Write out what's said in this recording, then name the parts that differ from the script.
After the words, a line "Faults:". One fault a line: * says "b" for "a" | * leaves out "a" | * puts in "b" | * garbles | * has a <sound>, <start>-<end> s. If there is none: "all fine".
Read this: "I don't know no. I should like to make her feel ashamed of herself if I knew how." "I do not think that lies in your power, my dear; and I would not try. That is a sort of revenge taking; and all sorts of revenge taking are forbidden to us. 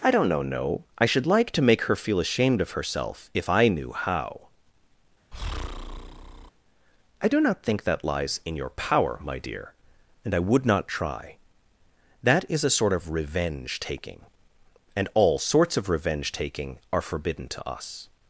"I don't know no. I should like to make her feel ashamed of herself if I knew how." "I do not think that lies in your power, my dear; and I would not try. That is a sort of revenge taking; and all sorts of revenge taking are forbidden to us.
Faults:
* has a breath, 5.3-6.5 s